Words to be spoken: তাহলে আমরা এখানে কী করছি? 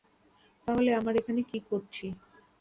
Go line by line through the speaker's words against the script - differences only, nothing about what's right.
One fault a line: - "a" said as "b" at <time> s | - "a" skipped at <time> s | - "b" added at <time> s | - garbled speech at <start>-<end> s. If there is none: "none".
none